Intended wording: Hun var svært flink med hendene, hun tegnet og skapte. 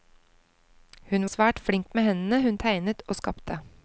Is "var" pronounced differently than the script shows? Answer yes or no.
yes